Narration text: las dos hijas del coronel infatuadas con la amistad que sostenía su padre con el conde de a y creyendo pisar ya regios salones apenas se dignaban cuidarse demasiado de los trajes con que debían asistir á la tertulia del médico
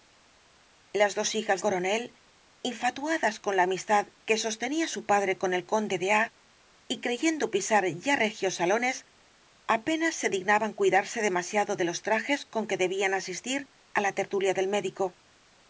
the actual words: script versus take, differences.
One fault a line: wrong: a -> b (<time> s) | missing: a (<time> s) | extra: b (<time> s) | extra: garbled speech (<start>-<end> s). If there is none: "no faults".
missing: del (1.6 s)